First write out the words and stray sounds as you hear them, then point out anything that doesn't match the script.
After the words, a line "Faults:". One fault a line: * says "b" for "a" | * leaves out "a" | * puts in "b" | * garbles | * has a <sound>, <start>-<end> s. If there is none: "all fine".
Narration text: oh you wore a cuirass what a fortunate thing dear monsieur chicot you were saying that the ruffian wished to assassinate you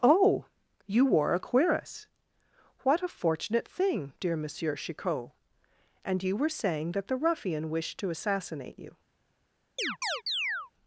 oh you wore a cuirass what a fortunate thing dear monsieur chicot and you were saying that the ruffian wished to assassinate you
Faults:
* puts in "and"
* has a chirp, 9.8-10.7 s